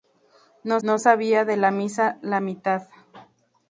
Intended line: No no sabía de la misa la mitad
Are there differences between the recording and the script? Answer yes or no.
no